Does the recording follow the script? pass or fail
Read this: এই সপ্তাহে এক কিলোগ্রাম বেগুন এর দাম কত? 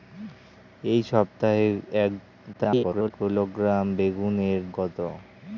fail